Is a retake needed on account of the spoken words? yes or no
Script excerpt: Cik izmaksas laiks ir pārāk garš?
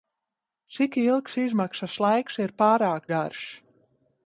yes